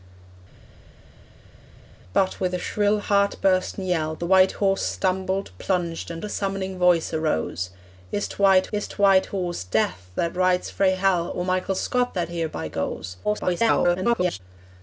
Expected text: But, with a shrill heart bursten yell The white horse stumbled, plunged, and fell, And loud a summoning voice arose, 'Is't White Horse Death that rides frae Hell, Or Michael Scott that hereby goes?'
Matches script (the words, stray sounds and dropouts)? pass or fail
fail